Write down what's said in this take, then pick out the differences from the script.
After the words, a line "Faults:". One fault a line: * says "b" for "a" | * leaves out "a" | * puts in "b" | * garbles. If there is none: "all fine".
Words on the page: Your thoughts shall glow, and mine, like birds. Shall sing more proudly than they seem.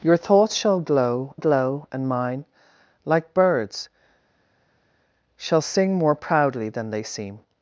Your thoughts shall glow glow, and mine, like birds. Shall sing more proudly than they seem.
Faults:
* puts in "glow"